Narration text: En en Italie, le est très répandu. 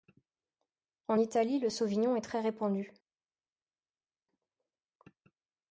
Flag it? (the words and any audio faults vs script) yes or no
yes